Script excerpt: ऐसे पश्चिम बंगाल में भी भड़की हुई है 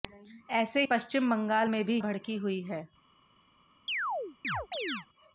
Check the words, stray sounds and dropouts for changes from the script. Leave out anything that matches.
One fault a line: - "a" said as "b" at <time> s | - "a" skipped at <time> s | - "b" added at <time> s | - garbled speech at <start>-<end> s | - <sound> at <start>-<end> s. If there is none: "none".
- chirp at 3.9-5.1 s